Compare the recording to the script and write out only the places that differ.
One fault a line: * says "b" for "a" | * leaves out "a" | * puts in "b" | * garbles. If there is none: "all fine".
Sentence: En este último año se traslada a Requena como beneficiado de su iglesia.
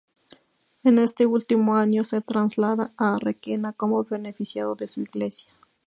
all fine